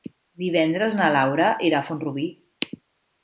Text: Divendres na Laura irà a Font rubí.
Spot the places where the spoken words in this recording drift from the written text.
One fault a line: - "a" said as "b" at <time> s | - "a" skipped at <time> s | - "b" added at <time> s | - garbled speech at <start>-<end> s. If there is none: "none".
none